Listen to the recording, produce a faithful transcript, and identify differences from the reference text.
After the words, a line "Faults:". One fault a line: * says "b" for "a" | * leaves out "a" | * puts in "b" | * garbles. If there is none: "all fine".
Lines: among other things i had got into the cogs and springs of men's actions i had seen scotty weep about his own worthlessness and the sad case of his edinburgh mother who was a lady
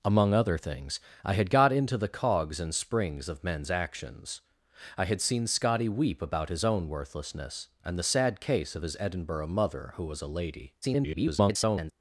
among other things i had got into the cogs and springs of men's actions i had seen scotty weep about his own worthlessness and the sad case of his edinburgh mother who was a lady [garbled]
Faults:
* garbles